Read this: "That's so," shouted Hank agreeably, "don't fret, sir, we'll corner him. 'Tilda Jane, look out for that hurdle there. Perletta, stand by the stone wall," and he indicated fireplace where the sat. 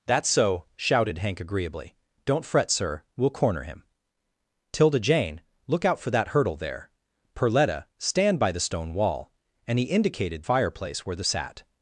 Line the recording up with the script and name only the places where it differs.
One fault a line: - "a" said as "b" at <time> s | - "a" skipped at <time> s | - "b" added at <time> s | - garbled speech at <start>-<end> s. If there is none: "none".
none